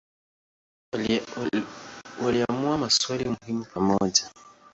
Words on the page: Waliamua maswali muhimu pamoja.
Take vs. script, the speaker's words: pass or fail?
pass